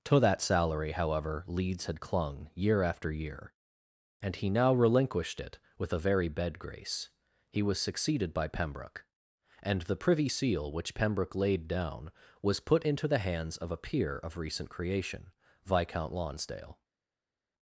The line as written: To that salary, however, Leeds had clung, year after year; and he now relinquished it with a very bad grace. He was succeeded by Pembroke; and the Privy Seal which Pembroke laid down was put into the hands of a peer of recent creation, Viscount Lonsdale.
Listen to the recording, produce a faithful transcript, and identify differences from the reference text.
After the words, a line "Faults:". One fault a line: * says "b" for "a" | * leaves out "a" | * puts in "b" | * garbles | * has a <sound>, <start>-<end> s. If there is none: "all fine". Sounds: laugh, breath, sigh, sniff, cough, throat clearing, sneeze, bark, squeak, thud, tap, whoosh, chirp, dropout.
To that salary, however, Leeds had clung, year after year; and he now relinquished it with a very bed grace. He was succeeded by Pembroke; and the Privy Seal which Pembroke laid down was put into the hands of a peer of recent creation, Viscount Lonsdale.
Faults:
* says "bed" for "bad"